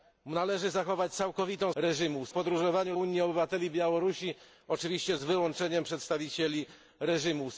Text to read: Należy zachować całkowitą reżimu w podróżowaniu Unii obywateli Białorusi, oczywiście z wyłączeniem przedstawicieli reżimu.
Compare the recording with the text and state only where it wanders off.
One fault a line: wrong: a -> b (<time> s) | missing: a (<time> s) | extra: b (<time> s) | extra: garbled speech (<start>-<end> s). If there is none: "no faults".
no faults